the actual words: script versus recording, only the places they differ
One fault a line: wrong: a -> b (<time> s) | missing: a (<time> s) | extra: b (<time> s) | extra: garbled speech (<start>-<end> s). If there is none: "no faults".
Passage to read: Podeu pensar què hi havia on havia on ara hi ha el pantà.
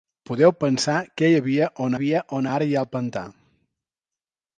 no faults